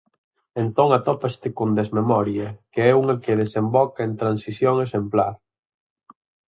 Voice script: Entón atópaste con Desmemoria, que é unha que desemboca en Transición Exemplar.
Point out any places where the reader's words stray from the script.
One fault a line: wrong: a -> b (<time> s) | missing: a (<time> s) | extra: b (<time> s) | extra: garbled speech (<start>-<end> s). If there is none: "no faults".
no faults